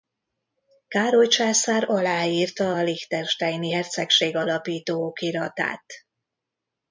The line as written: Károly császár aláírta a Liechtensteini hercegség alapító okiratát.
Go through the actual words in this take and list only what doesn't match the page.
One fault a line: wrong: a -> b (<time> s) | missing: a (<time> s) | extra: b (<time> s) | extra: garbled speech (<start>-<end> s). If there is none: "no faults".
no faults